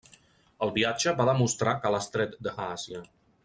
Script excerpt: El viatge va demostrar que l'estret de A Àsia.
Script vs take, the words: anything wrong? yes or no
no